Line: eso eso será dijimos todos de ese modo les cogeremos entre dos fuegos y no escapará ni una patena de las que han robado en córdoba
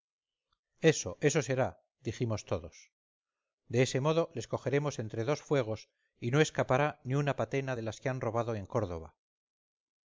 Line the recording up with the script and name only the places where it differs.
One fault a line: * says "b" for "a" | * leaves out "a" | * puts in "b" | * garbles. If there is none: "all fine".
all fine